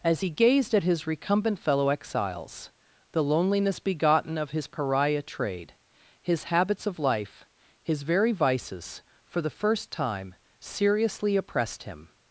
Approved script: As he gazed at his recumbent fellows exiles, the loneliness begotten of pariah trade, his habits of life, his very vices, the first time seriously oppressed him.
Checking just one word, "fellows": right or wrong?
wrong